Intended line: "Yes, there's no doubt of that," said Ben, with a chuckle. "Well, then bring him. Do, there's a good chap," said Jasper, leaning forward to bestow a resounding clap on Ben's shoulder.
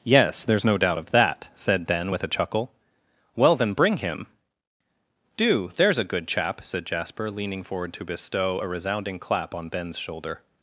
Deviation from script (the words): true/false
false